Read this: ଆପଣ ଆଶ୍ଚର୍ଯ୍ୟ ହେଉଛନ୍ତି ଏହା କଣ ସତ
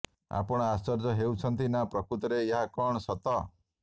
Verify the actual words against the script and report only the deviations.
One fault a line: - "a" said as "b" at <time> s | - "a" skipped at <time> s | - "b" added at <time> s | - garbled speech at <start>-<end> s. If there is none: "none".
- "ନା ପ୍ରକୃତରେ" added at 1.7 s